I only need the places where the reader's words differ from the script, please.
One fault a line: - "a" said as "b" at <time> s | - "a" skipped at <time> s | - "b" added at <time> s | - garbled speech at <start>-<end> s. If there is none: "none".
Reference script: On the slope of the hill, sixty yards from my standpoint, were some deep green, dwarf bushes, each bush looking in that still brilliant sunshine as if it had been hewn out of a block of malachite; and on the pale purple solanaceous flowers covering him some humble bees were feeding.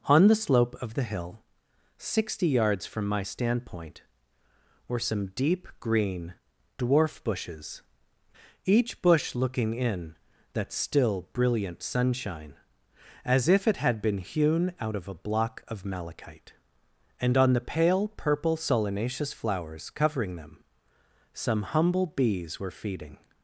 - "him" said as "them" at 20.4 s